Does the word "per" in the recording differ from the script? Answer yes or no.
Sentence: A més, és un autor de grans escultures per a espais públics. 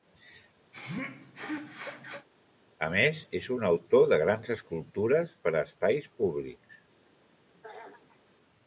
no